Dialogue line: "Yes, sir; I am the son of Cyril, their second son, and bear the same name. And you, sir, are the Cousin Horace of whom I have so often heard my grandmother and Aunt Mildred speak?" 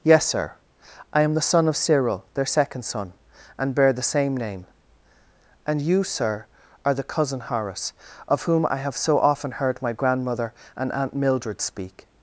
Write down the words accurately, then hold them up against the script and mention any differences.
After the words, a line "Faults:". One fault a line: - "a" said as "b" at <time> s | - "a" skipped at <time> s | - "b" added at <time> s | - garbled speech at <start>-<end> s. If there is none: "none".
"Yes, sir; I am the son of Cyril, their second son, and bear the same name. And you, sir, are the Cousin Horace of whom I have so often heard my grandmother and Aunt Mildred speak?"
Faults:
none